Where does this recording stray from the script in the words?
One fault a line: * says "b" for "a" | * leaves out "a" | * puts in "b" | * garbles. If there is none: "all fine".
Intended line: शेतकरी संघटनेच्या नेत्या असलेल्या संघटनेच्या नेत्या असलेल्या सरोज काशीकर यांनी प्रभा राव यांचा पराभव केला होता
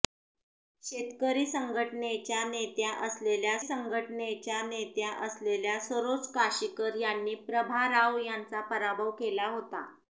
all fine